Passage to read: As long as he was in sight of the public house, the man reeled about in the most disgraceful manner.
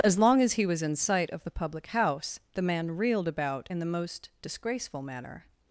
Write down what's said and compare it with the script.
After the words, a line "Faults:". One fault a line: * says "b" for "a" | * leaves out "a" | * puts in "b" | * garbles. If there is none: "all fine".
As long as he was in sight of the public house, the man reeled about in the most disgraceful manner.
Faults:
all fine